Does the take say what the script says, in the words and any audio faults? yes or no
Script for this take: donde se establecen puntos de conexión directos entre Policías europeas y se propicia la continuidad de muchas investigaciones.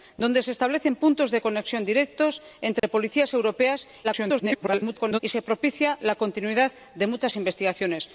no